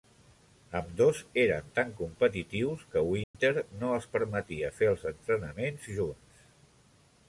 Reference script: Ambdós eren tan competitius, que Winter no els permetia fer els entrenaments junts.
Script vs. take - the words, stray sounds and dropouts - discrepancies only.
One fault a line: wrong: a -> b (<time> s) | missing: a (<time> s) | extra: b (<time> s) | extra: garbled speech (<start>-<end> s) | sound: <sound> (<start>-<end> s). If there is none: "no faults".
sound: dropout (3.2-3.3 s)